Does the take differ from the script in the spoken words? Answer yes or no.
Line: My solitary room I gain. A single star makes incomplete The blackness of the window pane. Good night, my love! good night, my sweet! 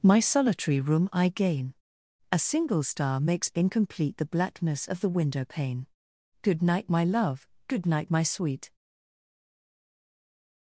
no